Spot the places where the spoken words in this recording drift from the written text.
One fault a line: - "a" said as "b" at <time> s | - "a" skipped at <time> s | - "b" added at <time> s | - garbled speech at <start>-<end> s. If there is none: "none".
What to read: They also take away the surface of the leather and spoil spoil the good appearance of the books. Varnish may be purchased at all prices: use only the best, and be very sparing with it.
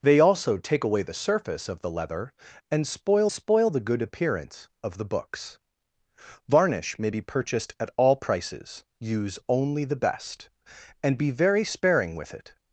none